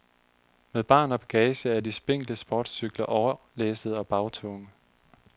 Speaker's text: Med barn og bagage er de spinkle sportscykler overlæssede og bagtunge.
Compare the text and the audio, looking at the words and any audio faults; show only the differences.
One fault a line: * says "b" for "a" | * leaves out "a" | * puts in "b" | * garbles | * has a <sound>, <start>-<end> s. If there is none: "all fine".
all fine